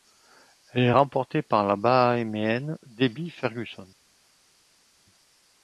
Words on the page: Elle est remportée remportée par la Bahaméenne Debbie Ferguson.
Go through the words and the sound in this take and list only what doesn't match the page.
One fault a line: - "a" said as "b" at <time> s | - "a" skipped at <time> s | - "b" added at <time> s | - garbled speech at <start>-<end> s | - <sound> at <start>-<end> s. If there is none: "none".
- "remportée" skipped at 1.4 s